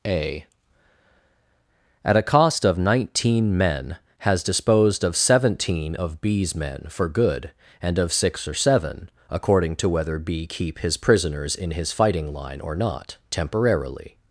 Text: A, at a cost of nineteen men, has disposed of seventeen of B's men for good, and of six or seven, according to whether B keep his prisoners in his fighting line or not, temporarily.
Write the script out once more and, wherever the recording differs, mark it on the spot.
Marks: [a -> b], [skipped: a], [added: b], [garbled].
A, at a cost of nineteen men, has disposed of seventeen of B's men for good, and of six or seven, according to whether B keep his prisoners in his fighting line or not, temporarily.